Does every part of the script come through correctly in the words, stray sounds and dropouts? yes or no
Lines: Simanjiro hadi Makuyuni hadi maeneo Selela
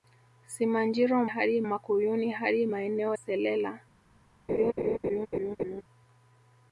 no